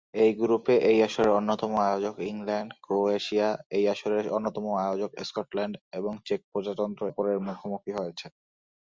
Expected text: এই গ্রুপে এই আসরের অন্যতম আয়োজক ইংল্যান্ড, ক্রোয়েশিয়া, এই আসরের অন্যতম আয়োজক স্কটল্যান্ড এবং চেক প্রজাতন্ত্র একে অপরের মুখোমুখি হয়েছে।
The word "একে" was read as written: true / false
false